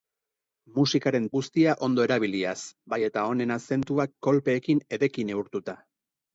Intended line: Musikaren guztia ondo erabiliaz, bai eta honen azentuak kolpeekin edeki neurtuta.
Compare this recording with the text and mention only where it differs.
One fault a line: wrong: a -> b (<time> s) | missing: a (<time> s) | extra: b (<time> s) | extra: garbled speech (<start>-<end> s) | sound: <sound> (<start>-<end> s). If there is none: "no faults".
no faults